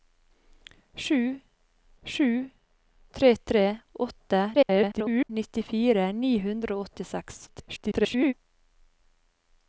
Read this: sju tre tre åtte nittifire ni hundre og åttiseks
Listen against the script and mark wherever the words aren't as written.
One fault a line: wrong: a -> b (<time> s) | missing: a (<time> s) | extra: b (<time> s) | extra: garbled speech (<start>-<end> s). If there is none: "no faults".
extra: sju (2.0 s)
extra: garbled speech (4.5-5.3 s)
extra: garbled speech (7.5-8.3 s)